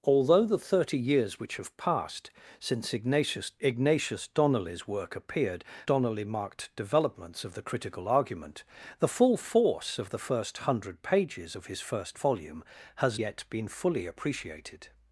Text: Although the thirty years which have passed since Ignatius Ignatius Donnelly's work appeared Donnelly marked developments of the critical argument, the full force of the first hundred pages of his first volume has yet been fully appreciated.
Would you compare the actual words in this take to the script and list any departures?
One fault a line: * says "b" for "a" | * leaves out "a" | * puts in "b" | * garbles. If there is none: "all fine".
all fine